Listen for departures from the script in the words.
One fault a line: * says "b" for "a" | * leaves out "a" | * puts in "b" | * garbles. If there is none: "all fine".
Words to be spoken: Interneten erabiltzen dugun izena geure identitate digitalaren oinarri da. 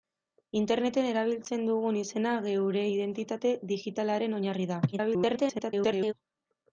* garbles